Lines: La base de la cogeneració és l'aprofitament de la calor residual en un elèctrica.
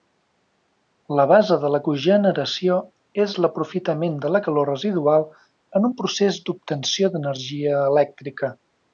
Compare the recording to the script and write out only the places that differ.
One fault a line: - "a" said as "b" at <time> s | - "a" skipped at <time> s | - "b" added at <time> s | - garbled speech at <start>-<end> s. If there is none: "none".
- "procés d'obtenció d'energia" added at 6.0 s